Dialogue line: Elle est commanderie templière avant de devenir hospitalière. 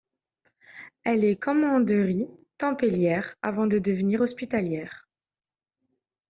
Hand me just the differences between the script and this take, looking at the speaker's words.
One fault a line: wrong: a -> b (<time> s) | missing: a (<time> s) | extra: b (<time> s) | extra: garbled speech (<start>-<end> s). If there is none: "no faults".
no faults